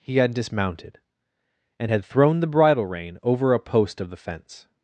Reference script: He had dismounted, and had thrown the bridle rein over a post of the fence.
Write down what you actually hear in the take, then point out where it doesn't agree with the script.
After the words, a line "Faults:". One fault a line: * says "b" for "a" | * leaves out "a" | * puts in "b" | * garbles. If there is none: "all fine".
He had dismounted, and had thrown the bridle rein over a post of the fence.
Faults:
all fine